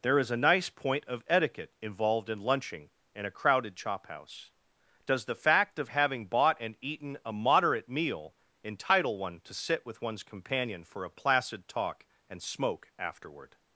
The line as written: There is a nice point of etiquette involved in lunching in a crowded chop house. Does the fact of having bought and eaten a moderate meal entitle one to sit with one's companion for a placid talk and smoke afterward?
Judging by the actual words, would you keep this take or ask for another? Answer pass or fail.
pass